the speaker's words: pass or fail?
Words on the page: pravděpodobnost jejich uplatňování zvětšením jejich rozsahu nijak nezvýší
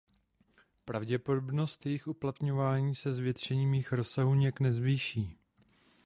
fail